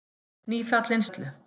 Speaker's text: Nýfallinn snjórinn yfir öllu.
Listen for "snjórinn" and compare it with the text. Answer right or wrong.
wrong